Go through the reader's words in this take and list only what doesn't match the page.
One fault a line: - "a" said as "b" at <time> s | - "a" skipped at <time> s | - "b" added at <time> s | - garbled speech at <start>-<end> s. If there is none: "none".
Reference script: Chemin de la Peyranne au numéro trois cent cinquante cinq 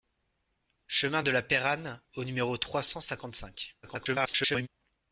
- garbled speech at 3.8-4.7 s